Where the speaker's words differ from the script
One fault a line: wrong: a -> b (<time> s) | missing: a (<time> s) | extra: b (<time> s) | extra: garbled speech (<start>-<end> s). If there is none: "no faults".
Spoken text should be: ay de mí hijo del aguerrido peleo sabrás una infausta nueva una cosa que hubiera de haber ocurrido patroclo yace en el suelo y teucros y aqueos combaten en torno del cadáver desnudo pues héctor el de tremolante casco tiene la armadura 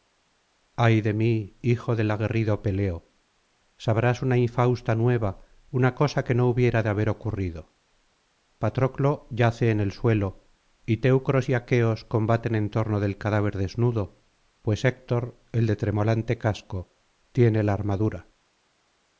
extra: no (6.3 s)